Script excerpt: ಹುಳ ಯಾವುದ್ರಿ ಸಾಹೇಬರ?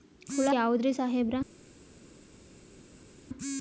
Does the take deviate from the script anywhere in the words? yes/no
no